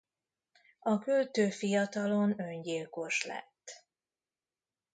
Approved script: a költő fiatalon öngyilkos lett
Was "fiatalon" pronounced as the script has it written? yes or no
yes